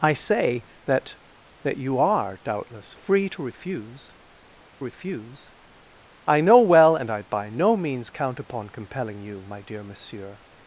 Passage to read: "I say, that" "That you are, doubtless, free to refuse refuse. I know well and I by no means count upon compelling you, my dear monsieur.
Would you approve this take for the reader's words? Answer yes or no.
yes